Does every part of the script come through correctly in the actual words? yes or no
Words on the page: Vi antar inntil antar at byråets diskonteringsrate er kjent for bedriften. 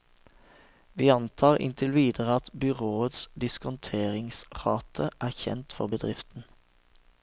no